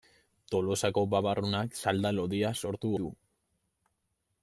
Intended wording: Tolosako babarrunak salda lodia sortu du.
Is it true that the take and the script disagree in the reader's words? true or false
false